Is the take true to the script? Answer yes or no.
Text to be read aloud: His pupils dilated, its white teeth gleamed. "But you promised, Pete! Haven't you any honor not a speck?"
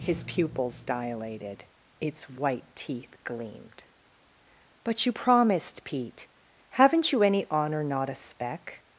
yes